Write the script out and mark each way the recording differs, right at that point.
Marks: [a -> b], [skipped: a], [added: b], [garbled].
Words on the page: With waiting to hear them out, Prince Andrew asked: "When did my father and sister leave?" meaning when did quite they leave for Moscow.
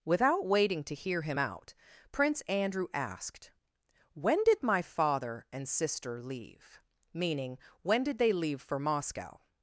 [With -> Without] waiting to hear [them -> him] out, Prince Andrew asked: "When did my father and sister leave?" meaning when did [skipped: quite] they leave for Moscow.